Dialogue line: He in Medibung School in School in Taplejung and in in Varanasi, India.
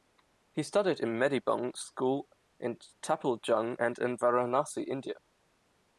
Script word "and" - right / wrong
right